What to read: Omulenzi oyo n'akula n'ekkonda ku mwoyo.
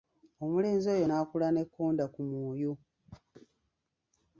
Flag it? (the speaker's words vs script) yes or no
no